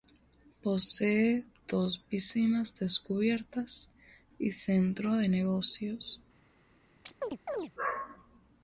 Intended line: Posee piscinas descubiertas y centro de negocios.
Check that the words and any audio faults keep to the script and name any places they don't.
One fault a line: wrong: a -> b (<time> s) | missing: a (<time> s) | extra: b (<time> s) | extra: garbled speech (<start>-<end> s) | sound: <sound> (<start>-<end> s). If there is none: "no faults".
extra: dos (1.7 s)
sound: chirp (7.1-7.7 s)